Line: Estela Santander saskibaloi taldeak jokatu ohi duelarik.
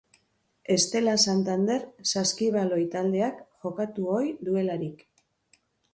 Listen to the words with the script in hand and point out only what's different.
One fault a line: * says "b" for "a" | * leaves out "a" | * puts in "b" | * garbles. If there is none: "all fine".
all fine